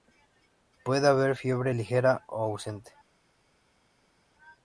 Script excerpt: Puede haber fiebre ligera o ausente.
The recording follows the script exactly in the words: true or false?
true